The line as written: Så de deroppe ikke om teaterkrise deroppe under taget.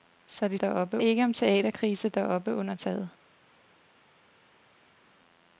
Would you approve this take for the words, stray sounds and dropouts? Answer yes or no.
yes